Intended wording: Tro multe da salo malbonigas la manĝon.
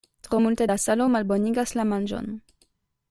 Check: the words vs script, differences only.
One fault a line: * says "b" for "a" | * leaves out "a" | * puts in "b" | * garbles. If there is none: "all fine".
all fine